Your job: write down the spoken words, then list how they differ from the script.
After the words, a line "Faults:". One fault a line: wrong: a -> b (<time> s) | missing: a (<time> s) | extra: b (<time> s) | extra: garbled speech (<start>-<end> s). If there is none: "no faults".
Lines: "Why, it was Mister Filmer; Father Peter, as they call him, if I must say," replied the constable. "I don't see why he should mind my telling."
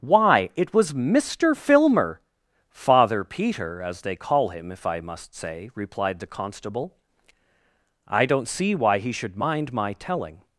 "Why, it was Mister Filmer; Father Peter, as they call him, if I must say," replied the constable. "I don't see why he should mind my telling."
Faults:
no faults